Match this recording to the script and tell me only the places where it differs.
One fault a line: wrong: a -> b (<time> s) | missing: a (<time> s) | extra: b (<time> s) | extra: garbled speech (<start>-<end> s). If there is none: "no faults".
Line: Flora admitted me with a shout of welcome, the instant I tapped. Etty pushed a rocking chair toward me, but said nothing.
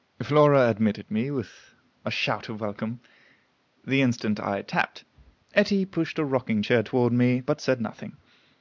no faults